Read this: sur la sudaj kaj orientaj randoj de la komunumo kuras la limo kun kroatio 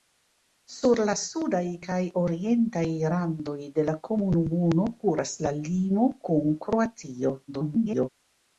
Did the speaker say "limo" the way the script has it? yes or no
yes